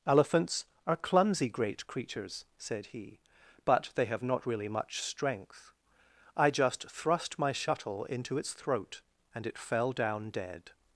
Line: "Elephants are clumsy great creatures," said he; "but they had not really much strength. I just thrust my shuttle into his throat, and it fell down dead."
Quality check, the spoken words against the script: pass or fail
fail